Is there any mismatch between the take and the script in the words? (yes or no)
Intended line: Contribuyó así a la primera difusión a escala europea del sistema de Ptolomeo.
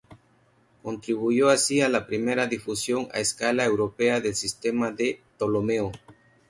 no